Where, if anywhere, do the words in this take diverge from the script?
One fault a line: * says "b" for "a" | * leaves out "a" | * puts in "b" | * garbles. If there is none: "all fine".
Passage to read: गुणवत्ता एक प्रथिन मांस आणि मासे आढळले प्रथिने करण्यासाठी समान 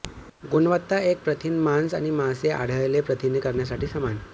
all fine